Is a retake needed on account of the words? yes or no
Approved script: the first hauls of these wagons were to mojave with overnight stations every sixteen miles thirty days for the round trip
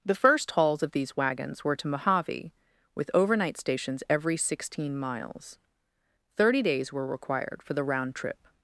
yes